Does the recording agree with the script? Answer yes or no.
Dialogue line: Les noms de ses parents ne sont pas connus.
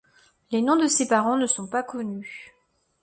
yes